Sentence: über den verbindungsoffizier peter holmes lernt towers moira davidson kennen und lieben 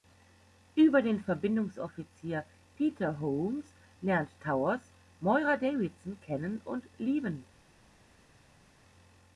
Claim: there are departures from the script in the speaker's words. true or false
false